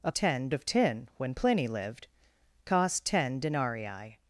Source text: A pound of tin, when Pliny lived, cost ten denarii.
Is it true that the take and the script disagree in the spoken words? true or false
true